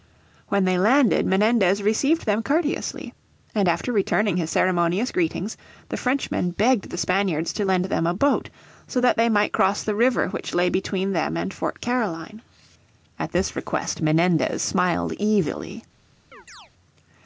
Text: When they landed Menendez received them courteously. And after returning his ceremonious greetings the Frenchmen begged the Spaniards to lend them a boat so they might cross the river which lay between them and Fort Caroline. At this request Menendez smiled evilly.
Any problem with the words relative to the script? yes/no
yes